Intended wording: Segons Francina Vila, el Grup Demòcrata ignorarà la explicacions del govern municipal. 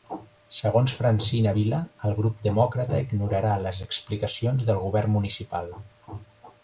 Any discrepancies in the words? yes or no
yes